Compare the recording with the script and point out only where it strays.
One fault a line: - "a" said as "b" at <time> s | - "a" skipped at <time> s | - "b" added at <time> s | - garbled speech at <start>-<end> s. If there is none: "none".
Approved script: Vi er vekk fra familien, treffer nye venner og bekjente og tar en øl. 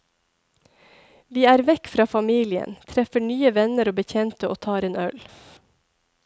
none